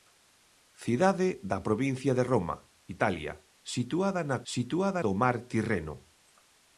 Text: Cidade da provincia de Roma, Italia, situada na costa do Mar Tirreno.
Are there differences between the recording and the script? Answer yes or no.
yes